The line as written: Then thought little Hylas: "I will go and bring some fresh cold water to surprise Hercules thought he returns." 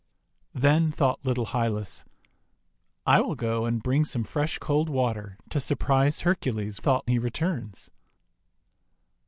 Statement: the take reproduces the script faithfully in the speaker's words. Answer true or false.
true